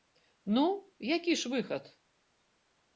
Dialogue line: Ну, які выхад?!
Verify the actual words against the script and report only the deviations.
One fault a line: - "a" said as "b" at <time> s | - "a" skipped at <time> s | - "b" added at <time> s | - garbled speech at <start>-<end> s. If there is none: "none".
- "ж" added at 1.4 s